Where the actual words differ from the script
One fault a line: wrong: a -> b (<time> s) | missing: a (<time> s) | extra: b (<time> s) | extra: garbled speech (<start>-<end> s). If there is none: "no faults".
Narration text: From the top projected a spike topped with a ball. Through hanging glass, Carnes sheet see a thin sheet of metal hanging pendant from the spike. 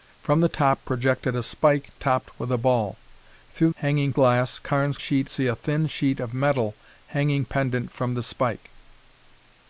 no faults